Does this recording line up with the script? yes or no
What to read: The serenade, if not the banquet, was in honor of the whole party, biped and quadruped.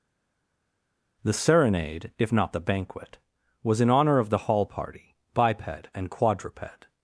no